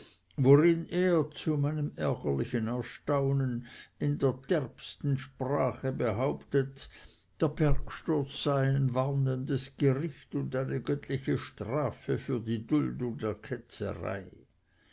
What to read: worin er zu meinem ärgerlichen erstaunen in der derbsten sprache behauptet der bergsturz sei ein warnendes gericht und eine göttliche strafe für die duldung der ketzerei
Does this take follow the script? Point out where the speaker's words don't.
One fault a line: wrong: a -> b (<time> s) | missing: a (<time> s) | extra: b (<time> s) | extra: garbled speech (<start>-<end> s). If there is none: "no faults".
no faults